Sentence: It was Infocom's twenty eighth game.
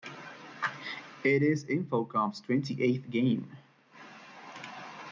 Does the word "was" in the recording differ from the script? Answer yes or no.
yes